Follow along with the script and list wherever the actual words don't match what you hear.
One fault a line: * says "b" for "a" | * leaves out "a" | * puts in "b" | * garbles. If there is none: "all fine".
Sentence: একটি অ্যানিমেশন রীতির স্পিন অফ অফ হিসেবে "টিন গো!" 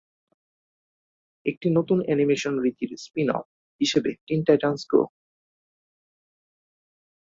* puts in "নতুন"
* leaves out "অফ"
* puts in "টাইটান্স"